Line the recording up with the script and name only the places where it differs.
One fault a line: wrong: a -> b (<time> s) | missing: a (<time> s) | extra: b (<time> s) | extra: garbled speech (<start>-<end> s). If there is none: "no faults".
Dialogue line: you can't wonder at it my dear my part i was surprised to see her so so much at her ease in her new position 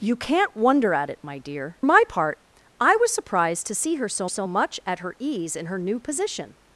no faults